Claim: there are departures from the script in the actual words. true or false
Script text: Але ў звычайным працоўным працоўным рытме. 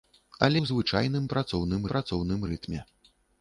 false